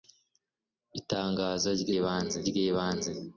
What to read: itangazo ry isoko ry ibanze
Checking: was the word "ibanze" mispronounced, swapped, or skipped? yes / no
no